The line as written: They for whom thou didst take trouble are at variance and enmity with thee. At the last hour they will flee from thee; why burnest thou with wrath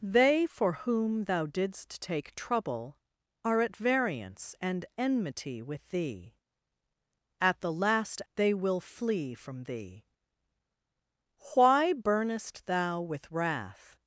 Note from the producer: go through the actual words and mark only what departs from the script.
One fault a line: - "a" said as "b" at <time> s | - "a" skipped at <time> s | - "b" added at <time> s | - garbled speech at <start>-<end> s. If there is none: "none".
- "hour" skipped at 8.2 s